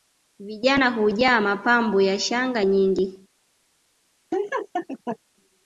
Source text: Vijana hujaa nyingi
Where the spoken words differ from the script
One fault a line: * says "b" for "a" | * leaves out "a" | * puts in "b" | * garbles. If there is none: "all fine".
* puts in "mapambo ya shanga"